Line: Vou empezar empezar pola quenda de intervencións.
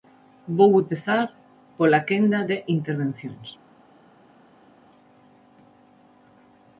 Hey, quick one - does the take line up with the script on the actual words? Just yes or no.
no